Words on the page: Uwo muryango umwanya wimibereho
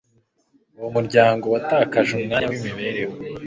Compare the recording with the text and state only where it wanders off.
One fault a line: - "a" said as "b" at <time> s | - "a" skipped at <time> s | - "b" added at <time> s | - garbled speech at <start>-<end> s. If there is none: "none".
- "watakaje" added at 1.5 s